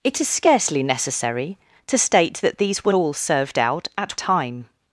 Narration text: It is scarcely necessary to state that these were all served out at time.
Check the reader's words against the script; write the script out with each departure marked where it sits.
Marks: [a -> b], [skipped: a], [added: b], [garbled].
It is scarcely necessary to state that these were all served out at time.